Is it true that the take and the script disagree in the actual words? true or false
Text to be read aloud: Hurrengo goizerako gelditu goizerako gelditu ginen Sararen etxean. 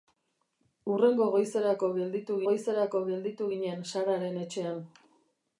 false